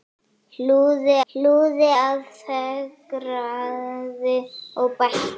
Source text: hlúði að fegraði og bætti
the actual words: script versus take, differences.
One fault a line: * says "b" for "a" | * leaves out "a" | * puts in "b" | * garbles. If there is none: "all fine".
* puts in "hlúði"